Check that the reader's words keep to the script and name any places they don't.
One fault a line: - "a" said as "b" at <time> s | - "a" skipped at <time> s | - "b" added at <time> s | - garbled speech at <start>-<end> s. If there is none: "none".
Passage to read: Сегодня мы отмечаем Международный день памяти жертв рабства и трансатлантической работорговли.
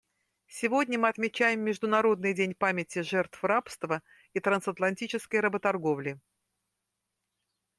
none